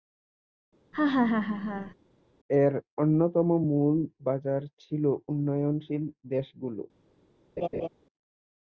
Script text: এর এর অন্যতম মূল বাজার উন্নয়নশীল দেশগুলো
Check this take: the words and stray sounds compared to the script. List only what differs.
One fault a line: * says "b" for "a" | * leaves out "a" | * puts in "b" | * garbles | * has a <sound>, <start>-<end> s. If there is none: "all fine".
* has a laugh, 0.9-1.9 s
* leaves out "এর"
* puts in "ছিল"
* has a laugh, 7.6-7.9 s